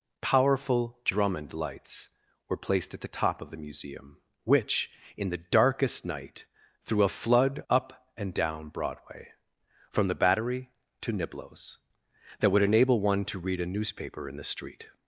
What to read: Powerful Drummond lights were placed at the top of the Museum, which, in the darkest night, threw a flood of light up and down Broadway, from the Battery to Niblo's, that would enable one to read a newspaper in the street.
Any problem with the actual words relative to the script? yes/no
yes